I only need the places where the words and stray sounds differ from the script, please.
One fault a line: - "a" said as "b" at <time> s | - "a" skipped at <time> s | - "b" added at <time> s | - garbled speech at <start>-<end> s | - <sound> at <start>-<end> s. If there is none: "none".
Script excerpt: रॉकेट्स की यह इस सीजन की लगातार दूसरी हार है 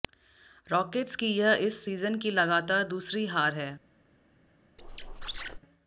- squeak at 4.8-5.6 s